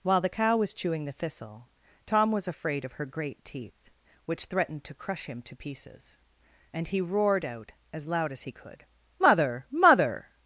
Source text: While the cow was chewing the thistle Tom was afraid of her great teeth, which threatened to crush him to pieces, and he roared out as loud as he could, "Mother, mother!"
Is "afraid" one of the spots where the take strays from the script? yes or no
no